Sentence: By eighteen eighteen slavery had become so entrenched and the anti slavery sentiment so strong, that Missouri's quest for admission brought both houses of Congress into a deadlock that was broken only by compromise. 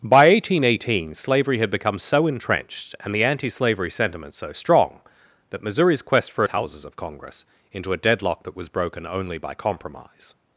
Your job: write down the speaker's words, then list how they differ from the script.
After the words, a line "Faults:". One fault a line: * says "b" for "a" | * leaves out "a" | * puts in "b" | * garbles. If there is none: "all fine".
By eighteen eighteen slavery had become so entrenched and the anti slavery sentiment so strong, that Missouri's quest for houses of Congress into a deadlock that was broken only by compromise.
Faults:
* leaves out "admission brought both"